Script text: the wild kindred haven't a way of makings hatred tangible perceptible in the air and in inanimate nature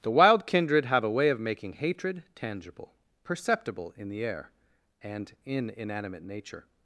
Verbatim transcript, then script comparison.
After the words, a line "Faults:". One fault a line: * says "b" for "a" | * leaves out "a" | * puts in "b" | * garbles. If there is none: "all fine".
the wild kindred have a way of making hatred tangible perceptible in the air and in inanimate nature
Faults:
* says "have" for "haven't"
* says "making" for "makings"